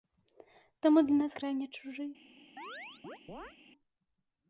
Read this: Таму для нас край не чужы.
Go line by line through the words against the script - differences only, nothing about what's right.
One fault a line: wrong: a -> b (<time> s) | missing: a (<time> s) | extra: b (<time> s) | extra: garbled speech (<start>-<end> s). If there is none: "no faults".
no faults